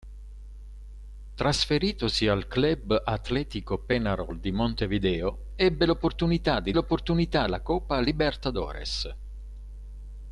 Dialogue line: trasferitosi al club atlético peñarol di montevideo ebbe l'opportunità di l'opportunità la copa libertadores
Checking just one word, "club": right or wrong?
right